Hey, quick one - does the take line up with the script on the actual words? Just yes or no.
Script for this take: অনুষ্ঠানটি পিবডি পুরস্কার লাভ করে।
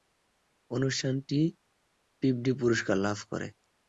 yes